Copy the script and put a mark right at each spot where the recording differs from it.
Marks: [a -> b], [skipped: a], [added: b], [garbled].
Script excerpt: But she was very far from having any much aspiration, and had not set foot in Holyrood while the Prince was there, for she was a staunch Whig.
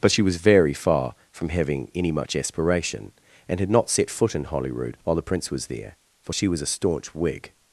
But she was very far from having any much aspiration, and had not set foot in Holyrood while the Prince was there, for she was a staunch Whig.